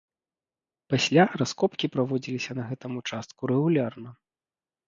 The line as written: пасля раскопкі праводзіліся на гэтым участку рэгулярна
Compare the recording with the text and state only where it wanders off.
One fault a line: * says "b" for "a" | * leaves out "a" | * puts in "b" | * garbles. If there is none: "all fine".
all fine